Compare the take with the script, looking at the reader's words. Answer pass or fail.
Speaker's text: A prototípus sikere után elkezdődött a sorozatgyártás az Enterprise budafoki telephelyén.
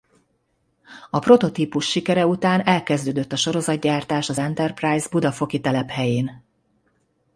pass